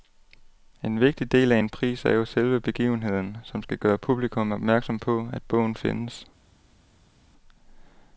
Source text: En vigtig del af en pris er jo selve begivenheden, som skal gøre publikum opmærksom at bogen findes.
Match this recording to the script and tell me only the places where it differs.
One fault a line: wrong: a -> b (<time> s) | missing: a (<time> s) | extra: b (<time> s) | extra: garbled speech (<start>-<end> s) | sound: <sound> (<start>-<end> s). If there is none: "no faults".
extra: på (5.0 s)